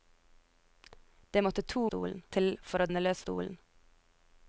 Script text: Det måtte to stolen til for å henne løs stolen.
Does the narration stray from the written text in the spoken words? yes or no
no